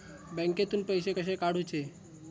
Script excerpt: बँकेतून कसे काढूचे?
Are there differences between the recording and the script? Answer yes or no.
yes